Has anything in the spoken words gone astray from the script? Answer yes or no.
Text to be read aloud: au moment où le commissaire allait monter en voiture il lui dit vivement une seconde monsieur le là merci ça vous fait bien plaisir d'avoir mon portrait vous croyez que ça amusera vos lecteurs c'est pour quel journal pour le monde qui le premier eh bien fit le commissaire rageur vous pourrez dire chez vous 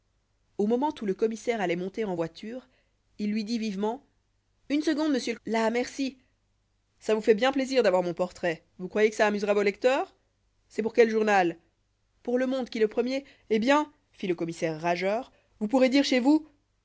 no